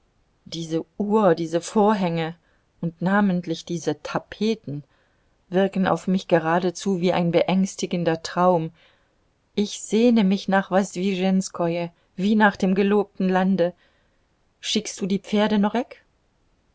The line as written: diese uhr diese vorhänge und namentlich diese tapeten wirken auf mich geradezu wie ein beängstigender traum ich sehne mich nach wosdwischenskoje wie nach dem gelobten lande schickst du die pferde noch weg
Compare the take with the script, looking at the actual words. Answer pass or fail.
pass